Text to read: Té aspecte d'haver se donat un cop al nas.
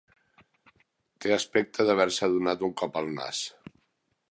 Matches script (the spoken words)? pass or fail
pass